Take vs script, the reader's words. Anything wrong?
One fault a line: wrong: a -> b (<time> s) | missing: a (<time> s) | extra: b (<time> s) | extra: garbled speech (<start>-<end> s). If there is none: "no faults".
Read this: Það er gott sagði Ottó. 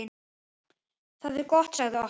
no faults